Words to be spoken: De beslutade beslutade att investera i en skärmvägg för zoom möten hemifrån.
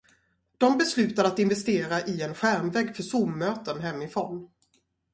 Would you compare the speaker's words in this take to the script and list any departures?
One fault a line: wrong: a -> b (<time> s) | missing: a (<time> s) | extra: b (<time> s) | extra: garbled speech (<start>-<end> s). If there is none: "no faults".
missing: beslutade (1.3 s)